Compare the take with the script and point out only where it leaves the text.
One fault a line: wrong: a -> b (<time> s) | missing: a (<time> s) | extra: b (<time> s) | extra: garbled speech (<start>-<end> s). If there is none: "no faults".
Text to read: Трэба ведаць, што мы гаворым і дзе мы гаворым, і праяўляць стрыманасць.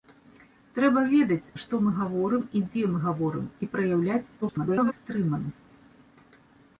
extra: garbled speech (4.4-4.9 s)